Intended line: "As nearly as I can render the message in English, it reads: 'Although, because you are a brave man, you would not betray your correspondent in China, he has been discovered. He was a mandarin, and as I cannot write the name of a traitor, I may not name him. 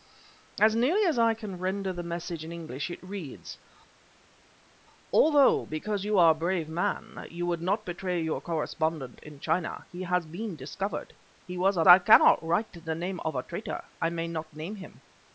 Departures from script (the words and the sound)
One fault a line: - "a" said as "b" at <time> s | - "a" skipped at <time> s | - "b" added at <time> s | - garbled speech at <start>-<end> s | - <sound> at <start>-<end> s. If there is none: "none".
- "mandarin and as" skipped at 11.8 s